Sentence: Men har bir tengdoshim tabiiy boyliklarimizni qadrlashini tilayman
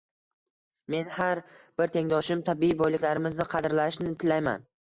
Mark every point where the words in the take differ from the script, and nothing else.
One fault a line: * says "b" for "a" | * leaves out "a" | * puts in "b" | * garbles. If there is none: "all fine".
all fine